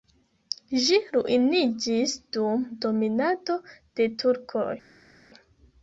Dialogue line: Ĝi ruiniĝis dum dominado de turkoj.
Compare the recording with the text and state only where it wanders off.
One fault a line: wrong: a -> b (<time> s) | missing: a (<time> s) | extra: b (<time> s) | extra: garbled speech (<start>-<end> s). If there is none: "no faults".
no faults